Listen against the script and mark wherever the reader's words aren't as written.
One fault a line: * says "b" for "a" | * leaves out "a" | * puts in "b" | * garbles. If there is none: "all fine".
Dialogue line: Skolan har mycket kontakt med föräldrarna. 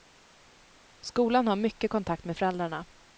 all fine